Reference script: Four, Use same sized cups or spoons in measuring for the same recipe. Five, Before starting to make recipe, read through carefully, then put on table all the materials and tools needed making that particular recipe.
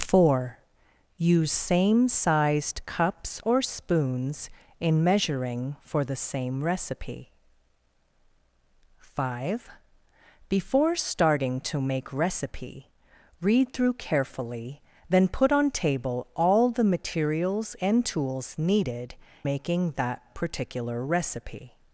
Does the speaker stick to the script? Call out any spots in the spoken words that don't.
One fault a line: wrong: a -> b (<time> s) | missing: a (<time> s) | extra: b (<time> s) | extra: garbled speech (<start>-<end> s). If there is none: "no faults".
no faults